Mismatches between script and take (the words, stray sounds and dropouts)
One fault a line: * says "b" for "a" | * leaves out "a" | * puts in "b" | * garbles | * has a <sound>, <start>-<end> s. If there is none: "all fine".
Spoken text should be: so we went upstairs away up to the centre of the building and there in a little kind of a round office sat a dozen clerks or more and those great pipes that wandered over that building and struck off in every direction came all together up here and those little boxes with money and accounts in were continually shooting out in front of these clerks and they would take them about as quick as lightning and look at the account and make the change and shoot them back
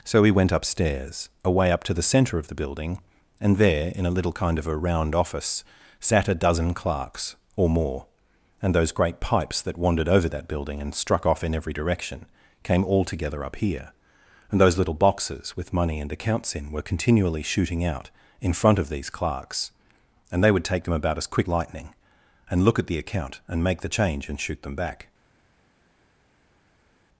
* leaves out "as"